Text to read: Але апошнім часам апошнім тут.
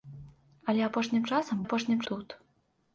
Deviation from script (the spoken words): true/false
false